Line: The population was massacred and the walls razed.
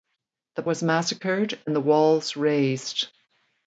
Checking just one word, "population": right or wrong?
wrong